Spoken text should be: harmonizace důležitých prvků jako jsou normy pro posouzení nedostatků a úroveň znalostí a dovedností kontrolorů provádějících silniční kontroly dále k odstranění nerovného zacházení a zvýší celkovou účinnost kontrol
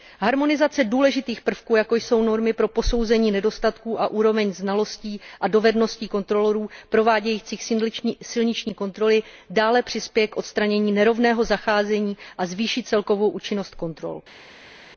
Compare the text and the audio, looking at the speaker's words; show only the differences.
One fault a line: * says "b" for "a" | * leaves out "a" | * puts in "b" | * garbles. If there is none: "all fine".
* puts in "přispěje"